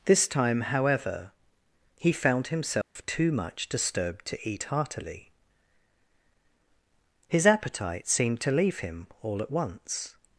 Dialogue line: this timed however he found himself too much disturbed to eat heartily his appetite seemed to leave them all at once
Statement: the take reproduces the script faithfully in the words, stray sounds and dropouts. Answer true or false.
false